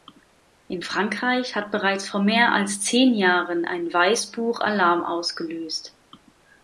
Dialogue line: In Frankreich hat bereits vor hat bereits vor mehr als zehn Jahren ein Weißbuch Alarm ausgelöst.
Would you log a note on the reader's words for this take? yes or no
yes